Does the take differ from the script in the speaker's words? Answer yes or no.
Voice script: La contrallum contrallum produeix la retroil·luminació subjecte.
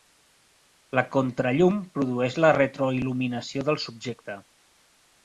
yes